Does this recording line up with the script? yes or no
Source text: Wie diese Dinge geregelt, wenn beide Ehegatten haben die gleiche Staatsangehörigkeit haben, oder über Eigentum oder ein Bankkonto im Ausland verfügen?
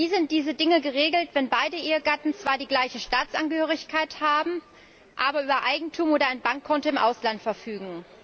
no